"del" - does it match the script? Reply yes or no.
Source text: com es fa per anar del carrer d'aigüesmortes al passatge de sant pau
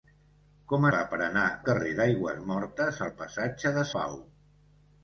no